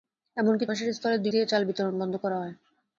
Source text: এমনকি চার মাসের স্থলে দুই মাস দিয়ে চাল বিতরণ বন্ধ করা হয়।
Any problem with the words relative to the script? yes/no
yes